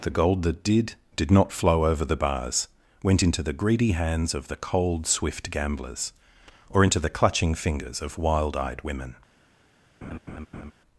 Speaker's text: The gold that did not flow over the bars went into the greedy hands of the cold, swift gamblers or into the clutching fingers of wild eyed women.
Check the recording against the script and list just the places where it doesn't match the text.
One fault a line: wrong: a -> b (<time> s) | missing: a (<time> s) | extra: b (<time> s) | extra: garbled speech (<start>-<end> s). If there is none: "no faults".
extra: did (1.1 s)